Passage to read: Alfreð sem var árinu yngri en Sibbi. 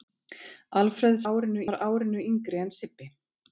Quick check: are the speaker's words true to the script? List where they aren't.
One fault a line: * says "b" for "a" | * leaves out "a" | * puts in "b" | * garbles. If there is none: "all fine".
* says "árinu" for "sem"